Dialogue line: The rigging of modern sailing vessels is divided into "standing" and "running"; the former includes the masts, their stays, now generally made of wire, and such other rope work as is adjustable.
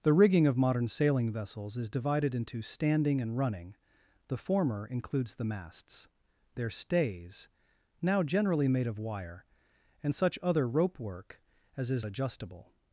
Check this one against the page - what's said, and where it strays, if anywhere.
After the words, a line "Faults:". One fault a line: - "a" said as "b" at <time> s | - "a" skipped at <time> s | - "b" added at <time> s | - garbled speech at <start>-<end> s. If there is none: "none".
The rigging of modern sailing vessels is divided into "standing" and "running"; the former includes the masts, their stays, now generally made of wire, and such other rope work as is adjustable.
Faults:
none